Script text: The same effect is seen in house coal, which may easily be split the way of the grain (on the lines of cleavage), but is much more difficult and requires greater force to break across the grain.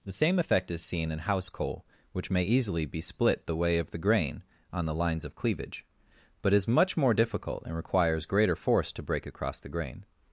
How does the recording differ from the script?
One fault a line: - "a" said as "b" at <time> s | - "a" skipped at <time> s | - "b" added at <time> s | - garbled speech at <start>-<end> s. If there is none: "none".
none